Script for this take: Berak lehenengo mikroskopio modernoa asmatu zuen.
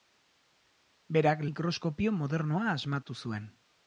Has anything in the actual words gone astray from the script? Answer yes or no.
yes